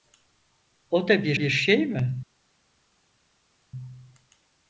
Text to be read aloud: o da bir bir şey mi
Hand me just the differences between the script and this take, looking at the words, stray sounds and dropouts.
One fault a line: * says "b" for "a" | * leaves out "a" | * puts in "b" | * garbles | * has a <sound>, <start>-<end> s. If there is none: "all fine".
all fine